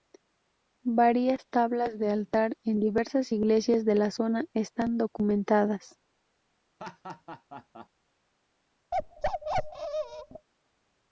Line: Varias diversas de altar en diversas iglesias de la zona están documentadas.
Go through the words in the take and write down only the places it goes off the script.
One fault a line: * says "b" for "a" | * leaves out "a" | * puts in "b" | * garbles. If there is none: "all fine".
* says "tablas" for "diversas"